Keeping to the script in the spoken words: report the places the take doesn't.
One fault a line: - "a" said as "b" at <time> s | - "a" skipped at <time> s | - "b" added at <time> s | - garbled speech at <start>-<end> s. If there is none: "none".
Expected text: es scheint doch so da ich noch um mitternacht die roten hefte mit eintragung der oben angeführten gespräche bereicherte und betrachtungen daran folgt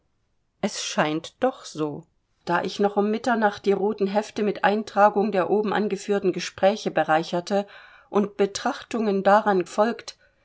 none